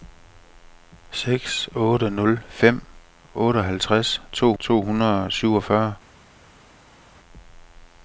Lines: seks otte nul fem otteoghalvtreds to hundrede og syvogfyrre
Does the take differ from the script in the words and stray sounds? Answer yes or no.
yes